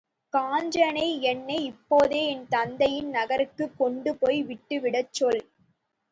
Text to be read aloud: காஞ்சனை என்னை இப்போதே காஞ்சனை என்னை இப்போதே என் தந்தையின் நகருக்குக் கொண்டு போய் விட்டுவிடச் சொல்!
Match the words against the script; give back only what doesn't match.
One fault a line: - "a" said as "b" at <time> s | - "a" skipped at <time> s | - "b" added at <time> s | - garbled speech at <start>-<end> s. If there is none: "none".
- "காஞ்சனை என்னை இப்போதே" skipped at 2.2 s